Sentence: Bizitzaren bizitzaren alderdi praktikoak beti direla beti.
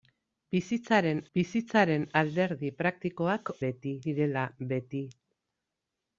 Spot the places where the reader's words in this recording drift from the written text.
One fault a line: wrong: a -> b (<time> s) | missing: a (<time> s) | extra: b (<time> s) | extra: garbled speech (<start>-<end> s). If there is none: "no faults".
no faults